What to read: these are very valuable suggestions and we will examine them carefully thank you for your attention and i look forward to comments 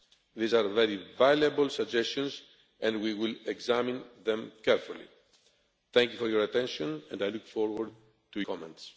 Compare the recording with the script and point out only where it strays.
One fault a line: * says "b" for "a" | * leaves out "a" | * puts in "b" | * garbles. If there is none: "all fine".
all fine